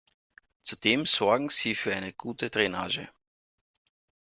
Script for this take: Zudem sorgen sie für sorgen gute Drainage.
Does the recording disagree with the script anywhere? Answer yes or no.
yes